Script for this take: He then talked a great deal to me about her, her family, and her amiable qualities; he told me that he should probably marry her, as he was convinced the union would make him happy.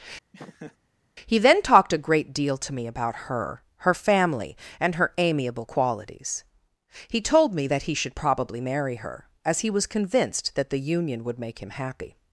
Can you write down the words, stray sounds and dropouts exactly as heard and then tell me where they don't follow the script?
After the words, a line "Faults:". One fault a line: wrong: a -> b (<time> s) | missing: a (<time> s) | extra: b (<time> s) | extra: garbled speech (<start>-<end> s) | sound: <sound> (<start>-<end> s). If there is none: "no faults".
He then talked a great deal to me about her, her family, and her amiable qualities; he told me that he should probably marry her, as he was convinced that the union would make him happy.
Faults:
sound: laugh (0.3-0.8 s)
extra: that (10.5 s)